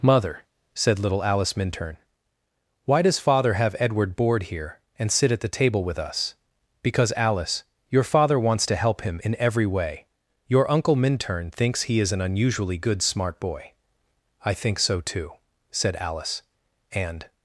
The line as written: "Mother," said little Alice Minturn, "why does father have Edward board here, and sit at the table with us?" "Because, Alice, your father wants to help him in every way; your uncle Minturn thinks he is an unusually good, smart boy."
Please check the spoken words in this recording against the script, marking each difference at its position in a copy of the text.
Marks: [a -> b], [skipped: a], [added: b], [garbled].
"Mother," said little Alice Minturn, "why does father have Edward board here, and sit at the table with us?" "Because, Alice, your father wants to help him in every way; your uncle Minturn thinks he is an unusually good, smart boy." [added: I think so too said Alice and]